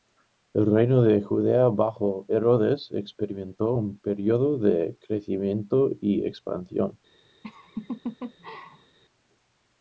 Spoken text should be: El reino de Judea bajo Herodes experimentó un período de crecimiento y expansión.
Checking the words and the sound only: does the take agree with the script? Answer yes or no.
no